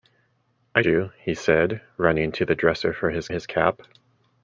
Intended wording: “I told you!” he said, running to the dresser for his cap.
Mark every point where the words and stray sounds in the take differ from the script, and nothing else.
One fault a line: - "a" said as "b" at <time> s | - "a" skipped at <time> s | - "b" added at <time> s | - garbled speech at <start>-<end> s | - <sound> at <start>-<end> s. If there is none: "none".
- "told" skipped at 0.8 s
- "his" added at 3.3 s